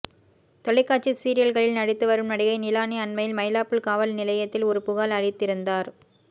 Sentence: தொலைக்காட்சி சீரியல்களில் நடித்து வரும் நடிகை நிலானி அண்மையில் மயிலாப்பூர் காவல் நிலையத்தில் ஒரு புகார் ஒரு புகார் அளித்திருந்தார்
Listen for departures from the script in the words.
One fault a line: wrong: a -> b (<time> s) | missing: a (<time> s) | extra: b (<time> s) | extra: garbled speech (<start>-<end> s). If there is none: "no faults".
missing: ஒரு புகார் (5.2 s)